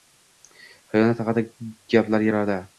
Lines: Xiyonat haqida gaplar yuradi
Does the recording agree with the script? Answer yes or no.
yes